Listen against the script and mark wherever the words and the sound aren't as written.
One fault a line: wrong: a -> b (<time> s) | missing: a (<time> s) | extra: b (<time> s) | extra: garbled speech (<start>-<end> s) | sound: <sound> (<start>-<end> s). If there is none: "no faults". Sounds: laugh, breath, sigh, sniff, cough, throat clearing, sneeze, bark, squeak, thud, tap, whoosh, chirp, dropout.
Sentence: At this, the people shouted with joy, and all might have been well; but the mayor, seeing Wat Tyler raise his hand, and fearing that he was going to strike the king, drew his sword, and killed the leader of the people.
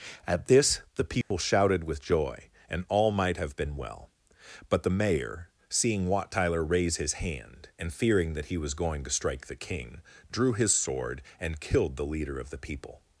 sound: dropout (1.2-1.3 s)